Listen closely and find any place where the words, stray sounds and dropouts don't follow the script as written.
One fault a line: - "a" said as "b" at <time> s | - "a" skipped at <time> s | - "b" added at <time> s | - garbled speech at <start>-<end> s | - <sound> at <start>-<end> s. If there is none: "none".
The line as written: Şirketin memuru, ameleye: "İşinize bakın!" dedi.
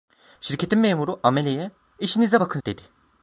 none